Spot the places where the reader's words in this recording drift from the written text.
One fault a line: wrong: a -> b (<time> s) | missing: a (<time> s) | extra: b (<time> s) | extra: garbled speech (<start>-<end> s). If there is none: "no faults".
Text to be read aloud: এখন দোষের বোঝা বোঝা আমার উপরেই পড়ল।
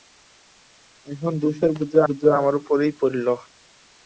no faults